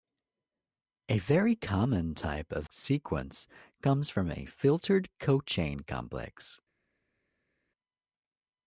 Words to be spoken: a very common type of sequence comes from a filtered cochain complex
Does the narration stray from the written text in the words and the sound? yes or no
no